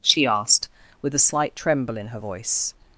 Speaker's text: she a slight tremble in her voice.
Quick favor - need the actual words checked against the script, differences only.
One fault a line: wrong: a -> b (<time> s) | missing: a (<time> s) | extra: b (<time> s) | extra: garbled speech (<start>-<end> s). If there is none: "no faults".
extra: asked with (0.2 s)